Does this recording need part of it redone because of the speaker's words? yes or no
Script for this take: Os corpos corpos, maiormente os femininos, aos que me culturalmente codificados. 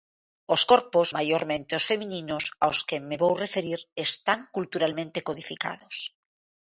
yes